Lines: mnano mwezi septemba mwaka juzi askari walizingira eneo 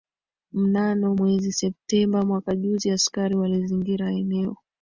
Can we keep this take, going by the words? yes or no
yes